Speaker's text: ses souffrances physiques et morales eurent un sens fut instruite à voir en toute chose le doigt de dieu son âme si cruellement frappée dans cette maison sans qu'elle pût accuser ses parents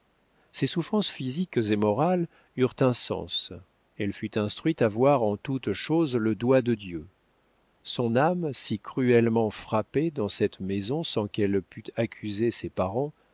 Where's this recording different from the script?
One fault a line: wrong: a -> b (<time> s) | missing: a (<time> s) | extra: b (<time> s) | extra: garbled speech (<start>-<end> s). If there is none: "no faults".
extra: elle (4.0 s)